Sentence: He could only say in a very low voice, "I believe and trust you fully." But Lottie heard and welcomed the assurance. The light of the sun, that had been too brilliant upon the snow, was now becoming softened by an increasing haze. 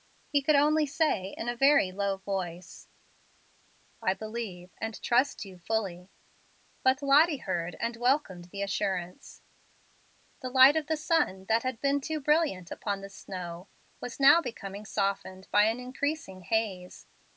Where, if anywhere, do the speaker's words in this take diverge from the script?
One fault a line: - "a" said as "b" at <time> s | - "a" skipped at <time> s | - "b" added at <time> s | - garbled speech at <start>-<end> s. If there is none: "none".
none